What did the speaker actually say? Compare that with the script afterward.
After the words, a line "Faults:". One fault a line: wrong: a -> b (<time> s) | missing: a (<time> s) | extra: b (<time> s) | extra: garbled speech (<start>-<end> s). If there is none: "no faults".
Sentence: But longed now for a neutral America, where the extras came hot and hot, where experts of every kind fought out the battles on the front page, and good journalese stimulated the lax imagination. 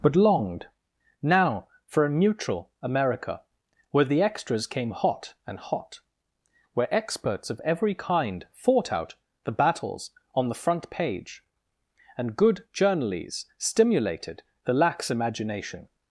But longed now for a neutral America, where the extras came hot and hot, where experts of every kind fought out the battles on the front page, and good journalese stimulated the lax imagination.
Faults:
no faults